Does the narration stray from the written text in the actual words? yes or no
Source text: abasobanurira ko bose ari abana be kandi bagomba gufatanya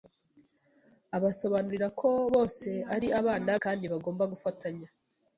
yes